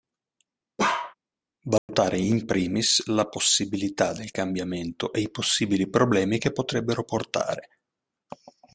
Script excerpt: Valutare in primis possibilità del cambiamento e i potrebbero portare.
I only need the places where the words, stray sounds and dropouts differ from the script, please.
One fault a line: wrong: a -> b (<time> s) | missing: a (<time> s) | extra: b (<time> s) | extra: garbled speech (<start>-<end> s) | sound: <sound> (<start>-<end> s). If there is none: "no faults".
sound: bark (0.8-1.1 s)
sound: dropout (1.8-1.9 s)
extra: la (3.1 s)
extra: possibili problemi che (5.3 s)